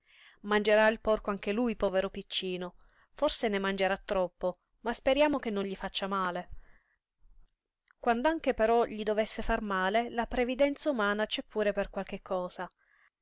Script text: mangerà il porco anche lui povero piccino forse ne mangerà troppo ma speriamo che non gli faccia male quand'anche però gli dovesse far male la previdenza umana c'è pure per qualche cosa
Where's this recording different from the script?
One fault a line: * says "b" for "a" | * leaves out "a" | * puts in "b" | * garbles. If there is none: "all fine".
all fine